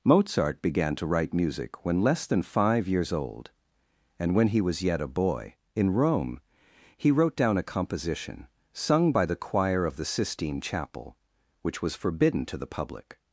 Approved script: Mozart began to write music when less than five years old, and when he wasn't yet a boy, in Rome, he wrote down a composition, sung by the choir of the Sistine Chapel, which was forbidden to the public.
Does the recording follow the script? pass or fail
fail